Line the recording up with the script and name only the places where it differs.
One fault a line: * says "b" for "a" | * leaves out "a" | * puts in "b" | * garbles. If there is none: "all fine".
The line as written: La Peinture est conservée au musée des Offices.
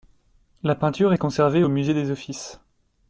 all fine